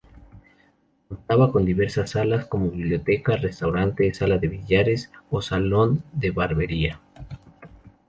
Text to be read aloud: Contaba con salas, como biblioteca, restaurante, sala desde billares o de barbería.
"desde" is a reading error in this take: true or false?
true